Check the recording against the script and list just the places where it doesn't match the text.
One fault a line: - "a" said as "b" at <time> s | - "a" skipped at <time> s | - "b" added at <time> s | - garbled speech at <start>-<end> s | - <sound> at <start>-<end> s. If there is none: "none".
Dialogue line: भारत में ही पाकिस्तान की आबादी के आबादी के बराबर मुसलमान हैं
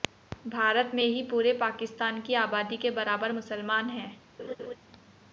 - "पूरे" added at 1.3 s
- "आबादी के" skipped at 2.9 s
- laugh at 4.4-4.8 s